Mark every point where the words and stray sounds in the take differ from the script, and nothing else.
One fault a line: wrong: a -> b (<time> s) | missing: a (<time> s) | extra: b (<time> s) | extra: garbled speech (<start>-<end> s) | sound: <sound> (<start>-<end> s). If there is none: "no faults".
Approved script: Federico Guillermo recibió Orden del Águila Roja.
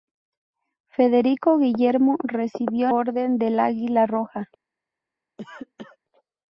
sound: cough (5.4-6.0 s)